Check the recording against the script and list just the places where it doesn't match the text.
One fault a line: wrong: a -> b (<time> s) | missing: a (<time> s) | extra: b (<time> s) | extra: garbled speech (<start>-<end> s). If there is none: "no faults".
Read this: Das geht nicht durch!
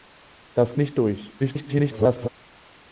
missing: geht (0.8 s)
extra: garbled speech (1.4-2.3 s)